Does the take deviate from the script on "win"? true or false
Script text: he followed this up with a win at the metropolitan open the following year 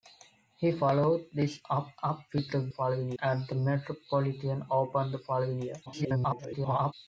true